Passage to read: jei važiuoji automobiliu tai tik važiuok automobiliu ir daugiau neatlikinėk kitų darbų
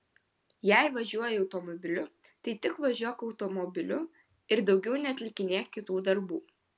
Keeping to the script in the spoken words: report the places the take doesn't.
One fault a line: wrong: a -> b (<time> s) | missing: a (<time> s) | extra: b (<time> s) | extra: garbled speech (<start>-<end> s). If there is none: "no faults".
no faults